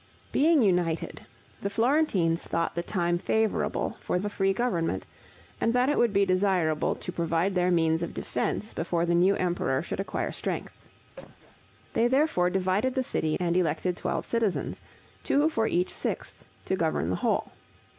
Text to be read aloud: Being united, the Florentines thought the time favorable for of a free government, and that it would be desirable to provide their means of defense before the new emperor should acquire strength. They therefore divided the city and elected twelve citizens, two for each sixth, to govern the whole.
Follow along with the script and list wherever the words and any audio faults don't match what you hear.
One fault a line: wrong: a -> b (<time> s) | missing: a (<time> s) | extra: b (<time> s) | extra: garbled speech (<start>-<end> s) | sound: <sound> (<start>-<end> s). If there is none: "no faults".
sound: cough (11.2-11.6 s)